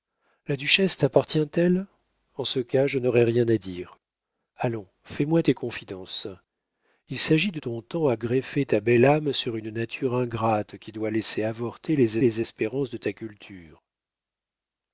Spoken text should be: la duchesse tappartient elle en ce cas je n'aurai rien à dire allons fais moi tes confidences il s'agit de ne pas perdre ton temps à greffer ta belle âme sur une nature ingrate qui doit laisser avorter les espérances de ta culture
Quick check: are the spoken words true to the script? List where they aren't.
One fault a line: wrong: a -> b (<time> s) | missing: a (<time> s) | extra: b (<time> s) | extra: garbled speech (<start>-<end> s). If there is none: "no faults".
missing: ne pas perdre (7.6 s)
extra: les (12.2 s)